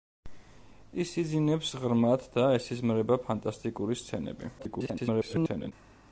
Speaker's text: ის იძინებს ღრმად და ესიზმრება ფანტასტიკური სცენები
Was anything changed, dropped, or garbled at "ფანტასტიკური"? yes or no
no